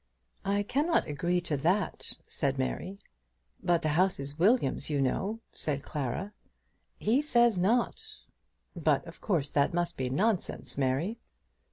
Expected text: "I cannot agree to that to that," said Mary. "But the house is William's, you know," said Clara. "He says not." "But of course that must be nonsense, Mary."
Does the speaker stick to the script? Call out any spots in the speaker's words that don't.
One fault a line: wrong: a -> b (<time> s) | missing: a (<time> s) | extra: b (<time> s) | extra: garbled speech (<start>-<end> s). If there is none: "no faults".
missing: to that (2.1 s)